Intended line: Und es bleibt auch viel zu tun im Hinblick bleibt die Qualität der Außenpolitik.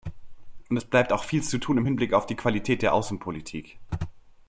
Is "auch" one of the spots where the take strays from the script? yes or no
no